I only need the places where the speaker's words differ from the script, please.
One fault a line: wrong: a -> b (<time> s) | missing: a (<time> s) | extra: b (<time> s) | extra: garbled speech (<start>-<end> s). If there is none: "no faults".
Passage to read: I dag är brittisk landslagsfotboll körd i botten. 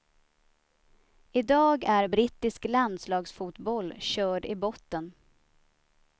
no faults